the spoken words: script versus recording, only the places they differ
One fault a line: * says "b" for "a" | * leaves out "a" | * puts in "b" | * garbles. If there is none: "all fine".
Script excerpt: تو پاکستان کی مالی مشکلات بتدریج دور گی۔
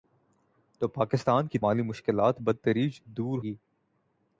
all fine